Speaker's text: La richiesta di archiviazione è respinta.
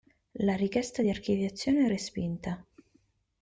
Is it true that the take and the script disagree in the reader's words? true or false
false